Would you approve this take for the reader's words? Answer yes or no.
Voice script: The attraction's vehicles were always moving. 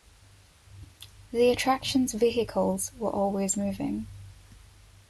yes